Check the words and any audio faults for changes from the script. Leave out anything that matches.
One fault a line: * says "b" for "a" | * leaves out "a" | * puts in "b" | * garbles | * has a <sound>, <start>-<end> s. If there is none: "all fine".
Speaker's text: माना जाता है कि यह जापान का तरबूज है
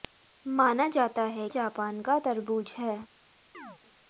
* leaves out "कि यह"
* has a chirp, 3.5-3.8 s